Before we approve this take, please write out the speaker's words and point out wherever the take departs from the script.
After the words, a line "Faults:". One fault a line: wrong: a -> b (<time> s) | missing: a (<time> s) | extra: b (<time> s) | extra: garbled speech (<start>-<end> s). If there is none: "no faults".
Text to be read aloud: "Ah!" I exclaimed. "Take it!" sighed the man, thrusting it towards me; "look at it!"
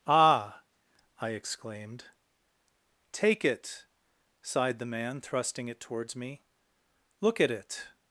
"Ah!" I exclaimed. "Take it!" sighed the man, thrusting it towards me; "look at it!"
Faults:
no faults